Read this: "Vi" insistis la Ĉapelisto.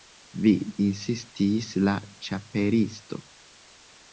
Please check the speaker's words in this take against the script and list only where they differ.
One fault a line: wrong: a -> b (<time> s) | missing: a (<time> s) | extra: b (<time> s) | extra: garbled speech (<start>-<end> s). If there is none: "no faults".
no faults